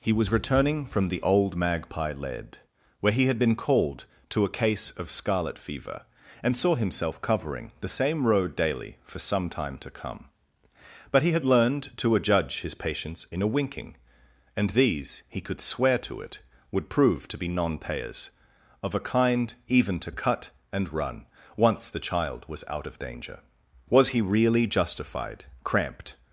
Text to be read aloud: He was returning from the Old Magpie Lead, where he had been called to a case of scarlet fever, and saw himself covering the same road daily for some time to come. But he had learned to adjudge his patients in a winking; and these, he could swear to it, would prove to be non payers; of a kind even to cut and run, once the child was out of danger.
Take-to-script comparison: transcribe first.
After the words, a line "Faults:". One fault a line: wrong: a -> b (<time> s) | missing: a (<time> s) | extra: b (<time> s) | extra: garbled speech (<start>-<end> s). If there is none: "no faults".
He was returning from the Old Magpie Lead, where he had been called to a case of scarlet fever, and saw himself covering the same road daily for some time to come. But he had learned to adjudge his patients in a winking; and these, he could swear to it, would prove to be non payers; of a kind even to cut and run, once the child was out of danger. Was he really justified, cramped
Faults:
extra: Was he really justified cramped (23.9 s)